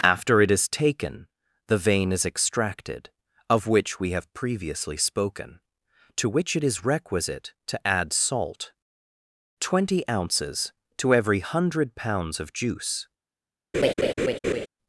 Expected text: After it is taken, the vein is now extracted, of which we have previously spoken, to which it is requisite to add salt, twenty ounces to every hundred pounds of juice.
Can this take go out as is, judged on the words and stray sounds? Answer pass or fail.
fail